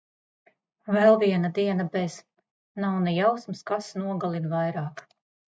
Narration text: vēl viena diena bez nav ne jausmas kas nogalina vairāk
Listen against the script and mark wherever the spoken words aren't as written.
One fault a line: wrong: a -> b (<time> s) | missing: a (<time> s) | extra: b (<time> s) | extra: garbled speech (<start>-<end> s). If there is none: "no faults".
no faults